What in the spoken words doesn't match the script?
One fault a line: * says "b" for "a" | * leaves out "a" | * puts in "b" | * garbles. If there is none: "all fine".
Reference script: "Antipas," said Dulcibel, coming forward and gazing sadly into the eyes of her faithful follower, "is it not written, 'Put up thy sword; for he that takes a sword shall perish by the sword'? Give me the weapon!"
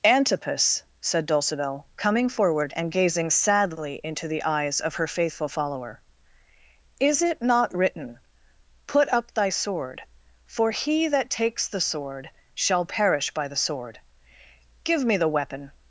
* says "the" for "a"